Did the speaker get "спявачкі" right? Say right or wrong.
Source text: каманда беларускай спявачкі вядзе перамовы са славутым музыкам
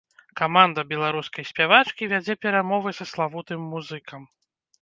right